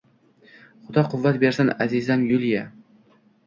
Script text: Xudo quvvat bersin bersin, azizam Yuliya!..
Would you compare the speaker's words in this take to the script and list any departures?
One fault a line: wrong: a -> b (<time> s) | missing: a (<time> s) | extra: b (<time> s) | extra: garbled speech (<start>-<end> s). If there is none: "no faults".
missing: bersin (1.7 s)